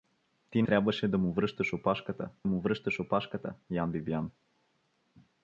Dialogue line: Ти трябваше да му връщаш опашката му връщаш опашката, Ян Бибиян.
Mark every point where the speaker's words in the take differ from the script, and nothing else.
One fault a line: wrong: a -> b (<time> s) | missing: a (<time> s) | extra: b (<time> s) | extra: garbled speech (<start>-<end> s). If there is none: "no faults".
no faults